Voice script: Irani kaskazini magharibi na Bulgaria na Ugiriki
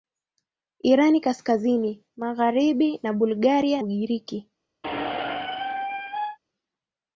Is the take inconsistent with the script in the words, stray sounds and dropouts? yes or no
yes